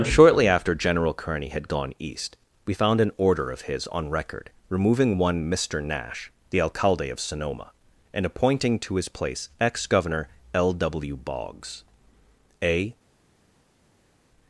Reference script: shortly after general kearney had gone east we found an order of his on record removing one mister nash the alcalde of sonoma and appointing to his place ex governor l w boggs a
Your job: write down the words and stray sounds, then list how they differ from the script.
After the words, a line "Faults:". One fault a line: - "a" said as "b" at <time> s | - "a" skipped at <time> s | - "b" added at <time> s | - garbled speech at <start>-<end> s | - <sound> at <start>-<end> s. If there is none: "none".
shortly after general kearney had gone east we found an order of his on record removing one mister nash the alcalde of sonoma and appointing to his place ex governor l w boggs a
Faults:
none